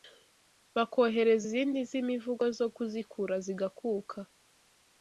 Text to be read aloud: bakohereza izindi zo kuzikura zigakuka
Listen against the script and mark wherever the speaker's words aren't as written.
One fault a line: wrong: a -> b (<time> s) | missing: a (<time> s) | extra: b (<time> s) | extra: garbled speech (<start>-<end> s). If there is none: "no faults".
extra: z'imivugo (1.9 s)